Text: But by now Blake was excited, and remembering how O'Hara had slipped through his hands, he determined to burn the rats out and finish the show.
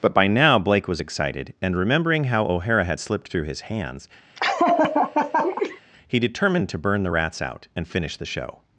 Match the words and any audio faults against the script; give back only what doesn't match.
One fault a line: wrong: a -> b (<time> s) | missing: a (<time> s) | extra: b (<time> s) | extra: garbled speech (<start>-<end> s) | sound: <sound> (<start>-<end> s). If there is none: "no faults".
sound: laugh (4.4-5.8 s)